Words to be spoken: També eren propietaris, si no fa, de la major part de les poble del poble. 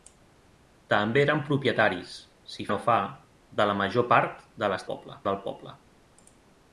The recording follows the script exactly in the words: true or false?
true